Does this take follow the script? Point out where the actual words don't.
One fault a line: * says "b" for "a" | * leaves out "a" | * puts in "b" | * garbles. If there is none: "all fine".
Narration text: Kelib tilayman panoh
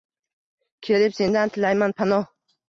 * puts in "sendan"